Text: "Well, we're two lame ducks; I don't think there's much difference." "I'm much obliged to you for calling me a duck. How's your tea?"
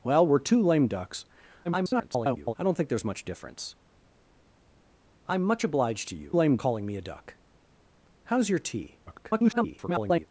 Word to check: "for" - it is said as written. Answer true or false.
false